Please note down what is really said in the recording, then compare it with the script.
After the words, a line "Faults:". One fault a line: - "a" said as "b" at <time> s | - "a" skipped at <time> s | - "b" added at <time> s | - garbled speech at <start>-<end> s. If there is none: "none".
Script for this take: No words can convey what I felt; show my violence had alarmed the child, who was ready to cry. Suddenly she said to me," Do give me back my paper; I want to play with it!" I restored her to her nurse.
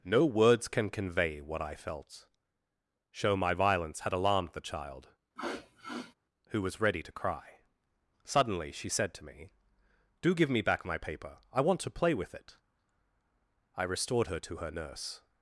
No words can convey what I felt; show my violence had alarmed the child, who was ready to cry. Suddenly she said to me," Do give me back my paper; I want to play with it!" I restored her to her nurse.
Faults:
none